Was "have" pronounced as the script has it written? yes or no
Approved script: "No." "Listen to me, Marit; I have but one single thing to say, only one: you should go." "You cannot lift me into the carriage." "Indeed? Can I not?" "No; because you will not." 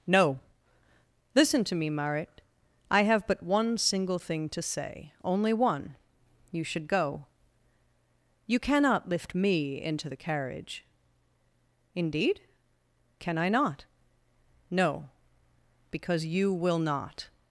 yes